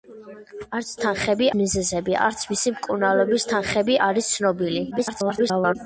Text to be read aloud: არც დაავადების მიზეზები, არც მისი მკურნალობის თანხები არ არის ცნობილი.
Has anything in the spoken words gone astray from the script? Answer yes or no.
yes